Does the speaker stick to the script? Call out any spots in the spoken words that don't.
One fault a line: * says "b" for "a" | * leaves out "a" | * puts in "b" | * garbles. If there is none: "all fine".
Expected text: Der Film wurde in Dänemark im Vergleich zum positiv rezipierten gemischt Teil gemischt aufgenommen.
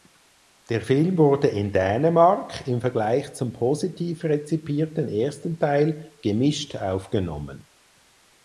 * says "ersten" for "gemischt"